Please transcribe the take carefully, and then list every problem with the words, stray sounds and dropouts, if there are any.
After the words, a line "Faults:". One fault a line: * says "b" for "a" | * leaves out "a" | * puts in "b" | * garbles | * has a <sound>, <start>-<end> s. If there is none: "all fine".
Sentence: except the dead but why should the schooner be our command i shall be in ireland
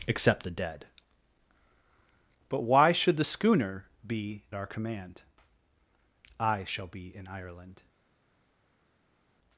except the dead but why should the schooner be our command i shall be in ireland
Faults:
all fine